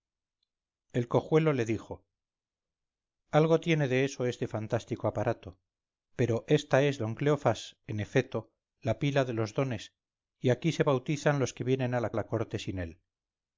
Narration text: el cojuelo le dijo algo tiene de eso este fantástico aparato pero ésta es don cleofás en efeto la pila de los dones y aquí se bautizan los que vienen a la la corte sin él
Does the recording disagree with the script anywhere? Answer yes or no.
no